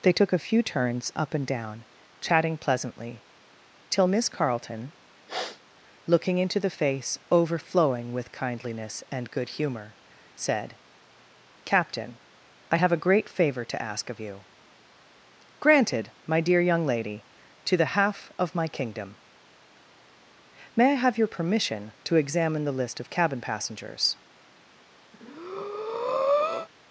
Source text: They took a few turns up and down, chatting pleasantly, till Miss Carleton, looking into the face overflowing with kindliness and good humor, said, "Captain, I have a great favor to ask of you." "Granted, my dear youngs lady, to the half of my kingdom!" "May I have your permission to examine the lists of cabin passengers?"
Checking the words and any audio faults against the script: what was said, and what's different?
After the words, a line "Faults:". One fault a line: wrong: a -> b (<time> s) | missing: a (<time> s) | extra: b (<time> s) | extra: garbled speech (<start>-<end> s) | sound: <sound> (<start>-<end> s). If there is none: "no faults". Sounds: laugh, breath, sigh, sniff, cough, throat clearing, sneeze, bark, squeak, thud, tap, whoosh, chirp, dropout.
They took a few turns up and down, chatting pleasantly, till Miss Carleton, looking into the face overflowing with kindliness and good humor, said, "Captain, I have a great favor to ask of you." "Granted, my dear young lady, to the half of my kingdom!" "May I have your permission to examine the list of cabin passengers?"
Faults:
sound: sniff (5.3-5.6 s)
wrong: youngs -> young (16.6 s)
wrong: lists -> list (22.8 s)
sound: breath (25.1-26.7 s)